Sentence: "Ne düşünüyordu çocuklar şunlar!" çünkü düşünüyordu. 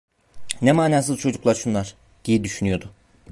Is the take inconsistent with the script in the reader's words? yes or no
yes